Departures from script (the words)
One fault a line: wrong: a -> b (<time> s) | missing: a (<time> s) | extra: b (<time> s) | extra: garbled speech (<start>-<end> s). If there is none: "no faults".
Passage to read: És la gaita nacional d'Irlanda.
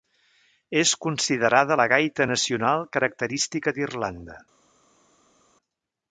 extra: considerada (1.1 s)
extra: característica (3.0 s)